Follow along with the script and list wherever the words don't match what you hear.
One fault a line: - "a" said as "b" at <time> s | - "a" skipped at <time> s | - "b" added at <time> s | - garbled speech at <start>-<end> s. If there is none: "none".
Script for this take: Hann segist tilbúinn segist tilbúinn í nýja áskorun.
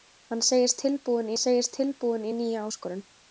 none